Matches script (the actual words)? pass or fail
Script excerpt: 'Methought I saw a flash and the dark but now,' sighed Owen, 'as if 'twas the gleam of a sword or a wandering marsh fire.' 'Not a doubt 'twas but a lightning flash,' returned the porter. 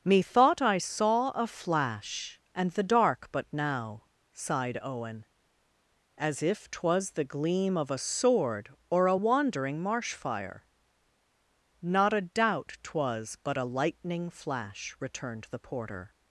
pass